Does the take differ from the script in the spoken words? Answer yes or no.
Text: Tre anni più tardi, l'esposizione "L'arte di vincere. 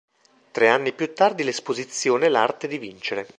no